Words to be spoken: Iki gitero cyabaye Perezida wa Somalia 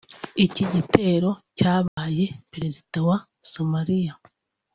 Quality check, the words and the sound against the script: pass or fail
fail